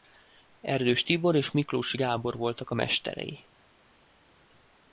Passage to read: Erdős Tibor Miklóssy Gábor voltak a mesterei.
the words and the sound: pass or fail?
fail